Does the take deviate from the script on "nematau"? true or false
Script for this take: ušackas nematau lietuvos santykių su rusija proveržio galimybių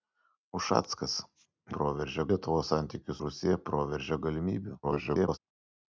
true